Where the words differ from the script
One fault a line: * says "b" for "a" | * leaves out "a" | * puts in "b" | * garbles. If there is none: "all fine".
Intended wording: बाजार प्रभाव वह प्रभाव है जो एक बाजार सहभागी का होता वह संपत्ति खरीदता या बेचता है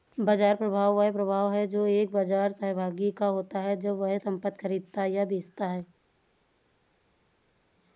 * puts in "है जब"